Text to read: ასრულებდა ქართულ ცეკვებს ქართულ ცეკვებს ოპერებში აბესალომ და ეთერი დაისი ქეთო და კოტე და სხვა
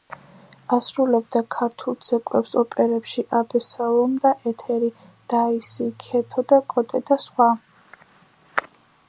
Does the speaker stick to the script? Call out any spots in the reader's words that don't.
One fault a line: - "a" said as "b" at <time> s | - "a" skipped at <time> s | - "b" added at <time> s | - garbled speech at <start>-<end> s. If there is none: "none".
- "ქართულ ცეკვებს" skipped at 2.5 s